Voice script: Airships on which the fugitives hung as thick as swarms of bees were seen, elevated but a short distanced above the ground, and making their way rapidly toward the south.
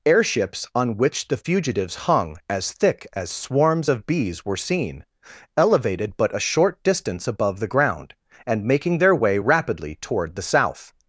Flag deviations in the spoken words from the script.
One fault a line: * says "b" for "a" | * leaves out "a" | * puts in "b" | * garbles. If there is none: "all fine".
* says "distance" for "distanced"